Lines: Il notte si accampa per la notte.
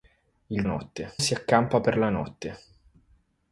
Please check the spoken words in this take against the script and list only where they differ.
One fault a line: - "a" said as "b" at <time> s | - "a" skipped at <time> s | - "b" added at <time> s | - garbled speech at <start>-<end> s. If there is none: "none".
none